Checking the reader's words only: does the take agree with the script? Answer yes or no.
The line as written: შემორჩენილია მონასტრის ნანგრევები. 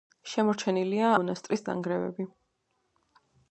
yes